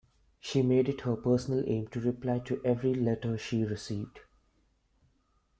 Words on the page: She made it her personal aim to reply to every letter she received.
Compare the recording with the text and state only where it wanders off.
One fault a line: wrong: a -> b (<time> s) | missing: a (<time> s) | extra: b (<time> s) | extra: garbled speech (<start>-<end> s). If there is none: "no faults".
no faults